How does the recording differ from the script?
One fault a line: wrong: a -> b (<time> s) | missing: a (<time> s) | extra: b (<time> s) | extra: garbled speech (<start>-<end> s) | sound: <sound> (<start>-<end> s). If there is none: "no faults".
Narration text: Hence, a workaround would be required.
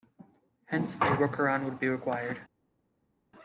no faults